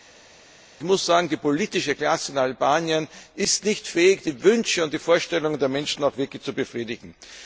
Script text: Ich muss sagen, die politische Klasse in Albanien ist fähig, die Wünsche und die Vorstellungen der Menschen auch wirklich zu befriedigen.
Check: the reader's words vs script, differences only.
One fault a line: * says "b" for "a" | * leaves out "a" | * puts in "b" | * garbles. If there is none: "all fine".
* puts in "nicht"